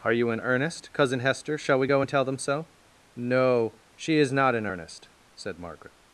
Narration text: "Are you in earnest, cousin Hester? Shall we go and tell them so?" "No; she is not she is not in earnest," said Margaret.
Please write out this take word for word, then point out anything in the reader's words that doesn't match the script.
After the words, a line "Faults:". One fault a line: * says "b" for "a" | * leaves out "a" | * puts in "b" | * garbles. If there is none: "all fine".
"Are you in earnest, cousin Hester? Shall we go and tell them so?" "No; she is not in earnest," said Margaret.
Faults:
* leaves out "she is not"